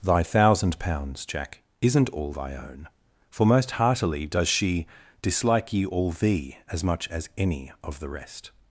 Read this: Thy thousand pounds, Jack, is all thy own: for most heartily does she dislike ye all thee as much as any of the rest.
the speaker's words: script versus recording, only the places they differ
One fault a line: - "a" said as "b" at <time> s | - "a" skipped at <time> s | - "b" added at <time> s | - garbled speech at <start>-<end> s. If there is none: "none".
- "is" said as "isn't" at 1.8 s